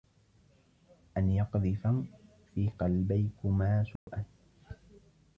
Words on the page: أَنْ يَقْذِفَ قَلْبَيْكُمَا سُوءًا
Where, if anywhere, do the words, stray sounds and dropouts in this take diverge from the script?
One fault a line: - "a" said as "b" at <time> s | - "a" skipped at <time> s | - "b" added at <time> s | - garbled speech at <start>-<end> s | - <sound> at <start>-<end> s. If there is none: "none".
- "فِي" added at 2.5 s
- dropout at 4.0-4.1 s